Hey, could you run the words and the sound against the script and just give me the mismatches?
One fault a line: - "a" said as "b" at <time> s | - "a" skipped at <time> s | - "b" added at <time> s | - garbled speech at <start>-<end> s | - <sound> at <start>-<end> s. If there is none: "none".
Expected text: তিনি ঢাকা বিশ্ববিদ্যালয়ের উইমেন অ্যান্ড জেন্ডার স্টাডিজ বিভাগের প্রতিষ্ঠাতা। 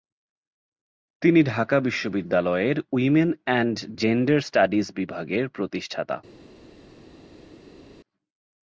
none